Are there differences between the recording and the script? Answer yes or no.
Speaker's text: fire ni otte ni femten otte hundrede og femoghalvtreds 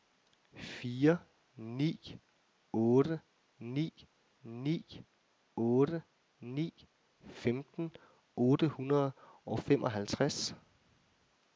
yes